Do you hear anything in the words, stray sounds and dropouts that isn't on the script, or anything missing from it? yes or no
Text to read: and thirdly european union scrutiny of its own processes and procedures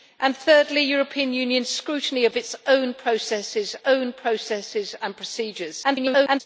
yes